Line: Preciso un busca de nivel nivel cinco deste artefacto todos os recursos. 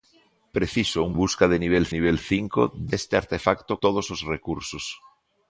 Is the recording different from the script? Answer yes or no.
no